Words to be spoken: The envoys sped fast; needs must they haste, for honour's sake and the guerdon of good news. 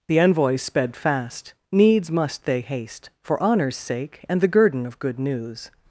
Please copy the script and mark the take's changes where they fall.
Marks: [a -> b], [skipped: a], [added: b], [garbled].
The envoys sped fast; needs must they haste, for honour's sake and the guerdon of good news.